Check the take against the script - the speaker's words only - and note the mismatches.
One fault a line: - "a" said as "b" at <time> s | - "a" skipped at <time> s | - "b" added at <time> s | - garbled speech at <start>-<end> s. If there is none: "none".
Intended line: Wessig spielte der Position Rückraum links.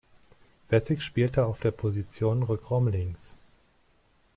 - "auf" added at 1.4 s